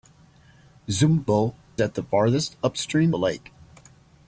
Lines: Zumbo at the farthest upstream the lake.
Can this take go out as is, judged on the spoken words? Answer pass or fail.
pass